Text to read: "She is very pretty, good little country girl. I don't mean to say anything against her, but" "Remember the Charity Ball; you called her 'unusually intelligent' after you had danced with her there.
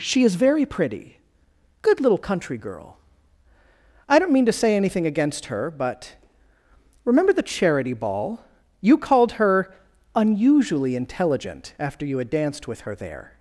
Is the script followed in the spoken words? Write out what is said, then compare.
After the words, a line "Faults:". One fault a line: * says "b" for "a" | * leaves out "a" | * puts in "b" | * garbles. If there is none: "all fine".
"She is very pretty, good little country girl. I don't mean to say anything against her, but" "Remember the Charity Ball; you called her 'unusually intelligent' after you had danced with her there.
Faults:
all fine